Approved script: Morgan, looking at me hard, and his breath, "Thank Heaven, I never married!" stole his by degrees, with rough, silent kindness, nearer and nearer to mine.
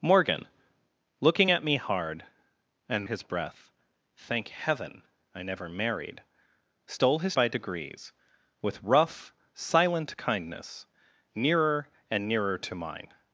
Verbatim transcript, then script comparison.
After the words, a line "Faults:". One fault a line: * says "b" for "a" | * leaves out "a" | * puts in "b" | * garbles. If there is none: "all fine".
Morgan, looking at me hard, and his breath, "Thank Heaven, I never married!" stole his by degrees, with rough, silent kindness, nearer and nearer to mine.
Faults:
all fine